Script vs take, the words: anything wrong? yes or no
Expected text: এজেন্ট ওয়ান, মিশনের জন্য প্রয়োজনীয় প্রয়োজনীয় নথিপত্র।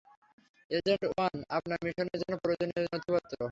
yes